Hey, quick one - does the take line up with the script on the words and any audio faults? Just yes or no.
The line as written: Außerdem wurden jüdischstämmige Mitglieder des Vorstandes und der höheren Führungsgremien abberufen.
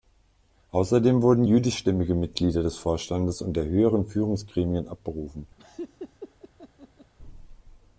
no